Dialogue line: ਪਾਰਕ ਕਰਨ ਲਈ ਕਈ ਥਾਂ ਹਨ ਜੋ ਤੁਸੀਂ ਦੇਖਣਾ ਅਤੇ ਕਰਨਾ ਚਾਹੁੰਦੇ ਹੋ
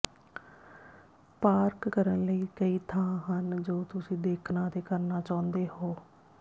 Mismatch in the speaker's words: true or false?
false